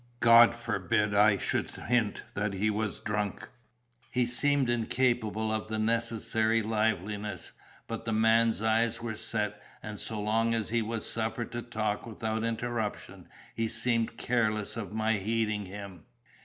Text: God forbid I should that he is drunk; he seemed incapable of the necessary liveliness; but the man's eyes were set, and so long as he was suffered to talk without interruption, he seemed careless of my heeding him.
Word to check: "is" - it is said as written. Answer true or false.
false